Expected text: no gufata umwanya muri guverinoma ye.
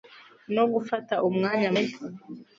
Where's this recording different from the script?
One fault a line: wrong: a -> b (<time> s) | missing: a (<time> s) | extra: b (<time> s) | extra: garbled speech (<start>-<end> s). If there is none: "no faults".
missing: muri guverinoma (1.7 s)